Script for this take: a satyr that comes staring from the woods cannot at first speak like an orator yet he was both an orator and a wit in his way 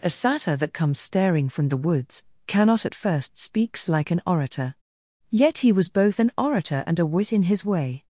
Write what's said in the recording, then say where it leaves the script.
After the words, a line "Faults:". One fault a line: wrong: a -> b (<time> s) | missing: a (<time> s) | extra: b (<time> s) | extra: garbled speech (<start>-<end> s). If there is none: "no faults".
a satyr that comes staring from the woods cannot at first speaks like an orator yet he was both an orator and a wit in his way
Faults:
wrong: speak -> speaks (3.4 s)